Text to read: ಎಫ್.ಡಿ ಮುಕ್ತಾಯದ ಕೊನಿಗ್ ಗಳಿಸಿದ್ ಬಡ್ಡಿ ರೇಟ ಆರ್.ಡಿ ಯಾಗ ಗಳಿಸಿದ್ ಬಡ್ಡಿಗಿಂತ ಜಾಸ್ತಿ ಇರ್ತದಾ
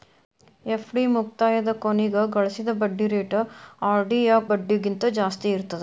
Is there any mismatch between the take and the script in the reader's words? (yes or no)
yes